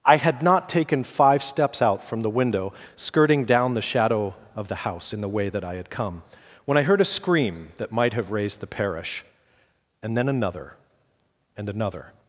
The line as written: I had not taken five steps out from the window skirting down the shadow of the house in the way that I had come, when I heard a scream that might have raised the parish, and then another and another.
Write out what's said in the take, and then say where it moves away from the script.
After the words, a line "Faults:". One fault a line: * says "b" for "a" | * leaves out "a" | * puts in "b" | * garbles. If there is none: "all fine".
I had not taken five steps out from the window skirting down the shadow of the house in the way that I had come, when I heard a scream that might have raised the parish, and then another and another.
Faults:
all fine